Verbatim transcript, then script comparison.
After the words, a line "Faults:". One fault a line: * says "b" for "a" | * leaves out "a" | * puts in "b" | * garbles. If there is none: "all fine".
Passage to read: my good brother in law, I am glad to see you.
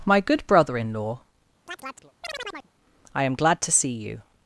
my good brother in law, I am glad to see you.
Faults:
all fine